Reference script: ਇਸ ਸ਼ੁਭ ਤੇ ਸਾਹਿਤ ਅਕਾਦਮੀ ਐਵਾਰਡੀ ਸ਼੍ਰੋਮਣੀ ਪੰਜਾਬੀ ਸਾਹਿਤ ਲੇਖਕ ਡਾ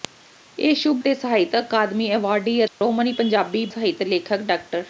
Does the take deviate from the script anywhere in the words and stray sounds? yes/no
yes